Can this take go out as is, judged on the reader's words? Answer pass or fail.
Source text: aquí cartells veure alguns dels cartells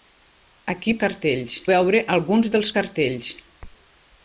pass